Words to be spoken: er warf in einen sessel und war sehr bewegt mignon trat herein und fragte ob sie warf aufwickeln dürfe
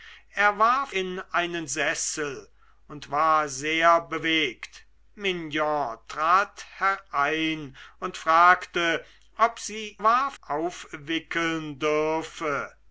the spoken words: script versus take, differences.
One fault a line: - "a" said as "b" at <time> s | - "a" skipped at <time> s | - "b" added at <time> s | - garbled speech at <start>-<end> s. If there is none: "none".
none